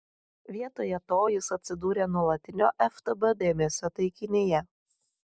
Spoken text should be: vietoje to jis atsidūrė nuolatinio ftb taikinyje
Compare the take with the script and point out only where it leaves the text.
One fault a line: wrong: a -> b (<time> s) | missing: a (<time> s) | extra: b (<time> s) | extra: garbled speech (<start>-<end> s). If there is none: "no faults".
extra: dėmesio (3.4 s)